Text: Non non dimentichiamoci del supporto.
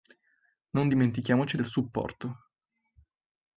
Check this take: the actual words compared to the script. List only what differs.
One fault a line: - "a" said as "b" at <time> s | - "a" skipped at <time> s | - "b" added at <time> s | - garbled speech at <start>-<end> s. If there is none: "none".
- "non" skipped at 0.9 s